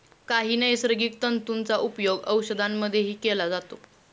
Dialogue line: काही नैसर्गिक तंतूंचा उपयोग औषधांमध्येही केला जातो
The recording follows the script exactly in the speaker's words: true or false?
true